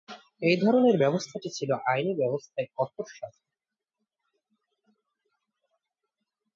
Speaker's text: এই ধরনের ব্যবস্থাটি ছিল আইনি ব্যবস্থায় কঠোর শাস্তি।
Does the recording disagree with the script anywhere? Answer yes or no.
no